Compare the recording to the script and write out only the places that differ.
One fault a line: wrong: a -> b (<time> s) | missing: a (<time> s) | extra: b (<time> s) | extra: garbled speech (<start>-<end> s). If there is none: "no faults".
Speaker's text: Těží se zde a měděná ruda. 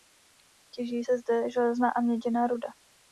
extra: železná (1.5 s)